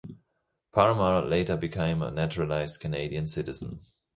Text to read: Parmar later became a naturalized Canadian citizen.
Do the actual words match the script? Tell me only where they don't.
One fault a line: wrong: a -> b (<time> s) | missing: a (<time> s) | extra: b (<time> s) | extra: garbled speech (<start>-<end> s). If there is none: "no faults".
no faults